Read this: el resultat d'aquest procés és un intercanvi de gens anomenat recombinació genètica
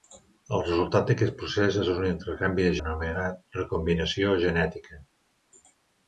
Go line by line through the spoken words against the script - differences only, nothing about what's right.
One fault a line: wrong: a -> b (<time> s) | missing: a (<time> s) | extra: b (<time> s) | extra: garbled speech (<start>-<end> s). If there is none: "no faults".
missing: gens (2.7 s)